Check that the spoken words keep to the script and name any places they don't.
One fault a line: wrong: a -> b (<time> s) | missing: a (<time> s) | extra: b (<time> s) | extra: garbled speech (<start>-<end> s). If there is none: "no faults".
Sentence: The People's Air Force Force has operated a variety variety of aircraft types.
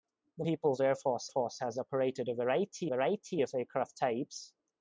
no faults